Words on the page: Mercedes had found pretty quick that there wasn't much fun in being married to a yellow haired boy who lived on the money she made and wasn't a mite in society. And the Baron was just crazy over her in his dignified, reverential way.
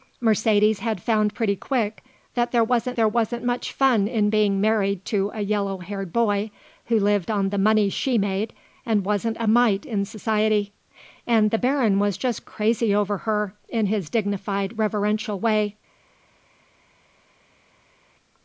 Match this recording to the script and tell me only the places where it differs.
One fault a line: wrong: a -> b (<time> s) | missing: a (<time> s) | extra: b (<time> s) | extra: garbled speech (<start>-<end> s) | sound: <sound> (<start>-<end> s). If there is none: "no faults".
extra: there wasn't (3.0 s)